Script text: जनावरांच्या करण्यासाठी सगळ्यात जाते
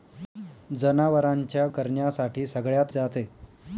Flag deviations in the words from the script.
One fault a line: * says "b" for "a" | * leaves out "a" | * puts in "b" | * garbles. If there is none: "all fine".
all fine